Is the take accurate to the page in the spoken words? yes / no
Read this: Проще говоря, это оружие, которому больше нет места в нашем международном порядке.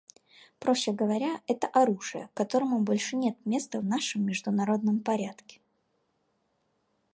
yes